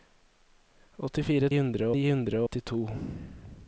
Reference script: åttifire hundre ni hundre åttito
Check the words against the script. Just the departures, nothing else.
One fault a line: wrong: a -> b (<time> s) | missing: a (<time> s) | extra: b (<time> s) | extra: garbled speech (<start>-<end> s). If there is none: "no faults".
no faults